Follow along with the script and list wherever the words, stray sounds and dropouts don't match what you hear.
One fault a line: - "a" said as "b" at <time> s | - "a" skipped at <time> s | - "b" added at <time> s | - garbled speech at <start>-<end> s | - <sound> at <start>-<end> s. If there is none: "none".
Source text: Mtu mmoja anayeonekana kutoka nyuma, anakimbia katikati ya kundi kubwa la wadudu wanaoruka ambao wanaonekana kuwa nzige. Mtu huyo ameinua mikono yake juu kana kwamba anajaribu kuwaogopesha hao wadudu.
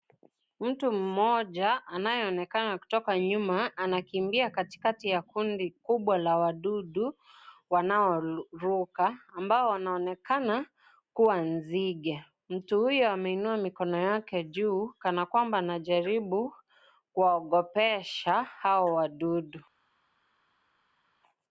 none